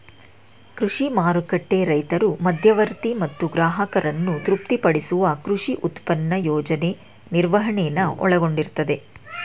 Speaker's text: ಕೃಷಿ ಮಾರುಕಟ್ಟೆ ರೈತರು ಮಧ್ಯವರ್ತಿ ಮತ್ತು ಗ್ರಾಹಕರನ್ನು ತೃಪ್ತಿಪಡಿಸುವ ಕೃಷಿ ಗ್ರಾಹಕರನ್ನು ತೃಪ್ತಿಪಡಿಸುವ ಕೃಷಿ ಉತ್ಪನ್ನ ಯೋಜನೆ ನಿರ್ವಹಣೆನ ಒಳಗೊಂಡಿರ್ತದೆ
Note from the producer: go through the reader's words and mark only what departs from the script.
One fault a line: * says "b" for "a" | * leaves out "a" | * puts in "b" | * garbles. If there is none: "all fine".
* leaves out "ಗ್ರಾಹಕರನ್ನು ತೃಪ್ತಿಪಡಿಸುವ ಕೃಷಿ"